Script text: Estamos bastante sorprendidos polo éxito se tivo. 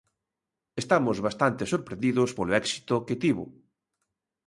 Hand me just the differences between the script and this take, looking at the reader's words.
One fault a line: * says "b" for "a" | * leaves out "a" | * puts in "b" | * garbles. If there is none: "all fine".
* says "que" for "se"